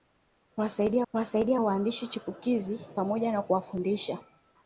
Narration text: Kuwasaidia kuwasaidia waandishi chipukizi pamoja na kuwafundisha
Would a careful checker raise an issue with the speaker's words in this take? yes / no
no